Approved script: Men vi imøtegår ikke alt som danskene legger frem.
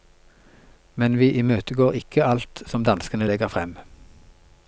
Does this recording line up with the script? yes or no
yes